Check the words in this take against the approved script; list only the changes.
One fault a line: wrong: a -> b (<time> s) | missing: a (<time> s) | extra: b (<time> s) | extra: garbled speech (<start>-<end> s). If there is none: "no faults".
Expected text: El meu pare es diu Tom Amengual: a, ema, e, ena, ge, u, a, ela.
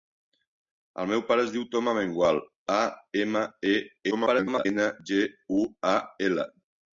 extra: garbled speech (4.1-4.7 s)